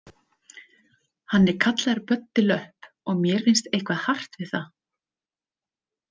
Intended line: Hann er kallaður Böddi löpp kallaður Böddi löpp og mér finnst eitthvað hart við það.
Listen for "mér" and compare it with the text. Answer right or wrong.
right